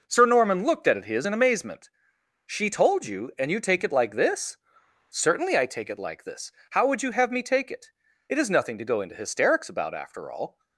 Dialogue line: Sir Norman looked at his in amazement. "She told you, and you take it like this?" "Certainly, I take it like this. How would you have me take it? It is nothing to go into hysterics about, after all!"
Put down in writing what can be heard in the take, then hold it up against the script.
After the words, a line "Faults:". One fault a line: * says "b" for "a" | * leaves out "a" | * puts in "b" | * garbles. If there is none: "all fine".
Sir Norman looked at his in amazement. "She told you, and you take it like this?" "Certainly, I take it like this. How would you have me take it? It is nothing to go into hysterics about, after all!"
Faults:
all fine